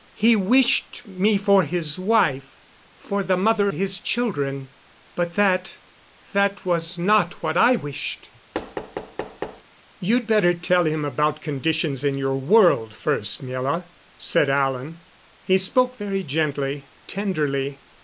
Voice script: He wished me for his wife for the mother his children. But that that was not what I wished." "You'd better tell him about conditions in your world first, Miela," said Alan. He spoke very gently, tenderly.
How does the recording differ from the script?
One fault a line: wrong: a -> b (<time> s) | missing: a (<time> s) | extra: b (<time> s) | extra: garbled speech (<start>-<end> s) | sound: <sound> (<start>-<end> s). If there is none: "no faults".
sound: thud (8.5-9.6 s)